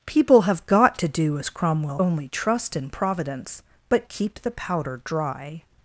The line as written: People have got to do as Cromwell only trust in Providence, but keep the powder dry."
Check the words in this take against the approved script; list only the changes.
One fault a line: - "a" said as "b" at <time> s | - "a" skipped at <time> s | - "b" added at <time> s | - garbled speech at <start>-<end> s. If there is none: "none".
none